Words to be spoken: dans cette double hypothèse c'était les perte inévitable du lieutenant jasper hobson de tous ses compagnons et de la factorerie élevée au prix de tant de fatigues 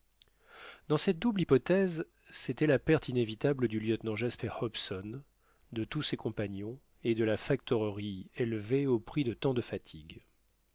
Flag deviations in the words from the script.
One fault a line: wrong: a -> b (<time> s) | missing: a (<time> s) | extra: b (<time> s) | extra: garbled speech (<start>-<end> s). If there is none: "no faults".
wrong: les -> la (2.7 s)